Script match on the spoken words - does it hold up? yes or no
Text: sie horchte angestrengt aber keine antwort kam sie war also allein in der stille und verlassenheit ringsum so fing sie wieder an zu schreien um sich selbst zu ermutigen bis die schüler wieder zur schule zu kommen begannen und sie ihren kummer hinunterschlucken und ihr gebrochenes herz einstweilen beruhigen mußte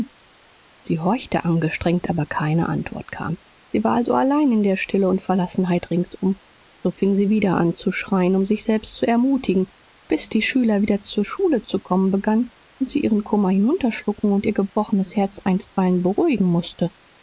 yes